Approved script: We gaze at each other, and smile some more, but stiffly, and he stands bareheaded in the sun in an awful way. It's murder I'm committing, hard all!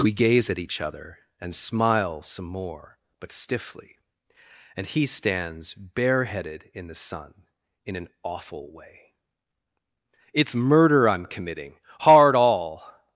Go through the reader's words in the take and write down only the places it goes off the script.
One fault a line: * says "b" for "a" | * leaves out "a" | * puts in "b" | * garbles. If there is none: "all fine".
all fine